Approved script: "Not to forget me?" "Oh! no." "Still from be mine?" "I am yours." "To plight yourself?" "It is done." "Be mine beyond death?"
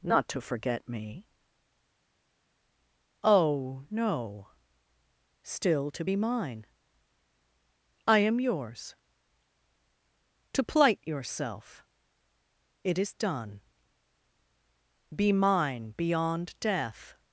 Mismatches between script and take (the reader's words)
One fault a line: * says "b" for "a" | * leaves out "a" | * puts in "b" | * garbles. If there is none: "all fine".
* says "to" for "from"